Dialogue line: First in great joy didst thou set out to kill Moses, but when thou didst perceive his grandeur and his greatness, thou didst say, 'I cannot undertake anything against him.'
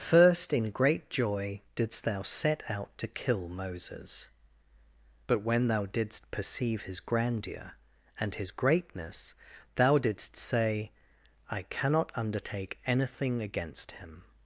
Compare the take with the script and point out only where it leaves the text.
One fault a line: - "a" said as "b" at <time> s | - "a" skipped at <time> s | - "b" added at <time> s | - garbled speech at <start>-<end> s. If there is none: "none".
none